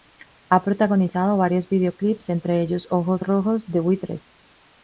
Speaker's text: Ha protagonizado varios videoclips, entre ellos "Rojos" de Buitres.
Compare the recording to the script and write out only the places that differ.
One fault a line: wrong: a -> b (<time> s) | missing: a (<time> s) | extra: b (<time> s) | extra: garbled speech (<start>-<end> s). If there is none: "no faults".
extra: Ojos (2.9 s)